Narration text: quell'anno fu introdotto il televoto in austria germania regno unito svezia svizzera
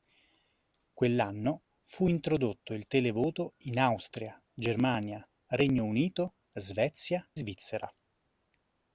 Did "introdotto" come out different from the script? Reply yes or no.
no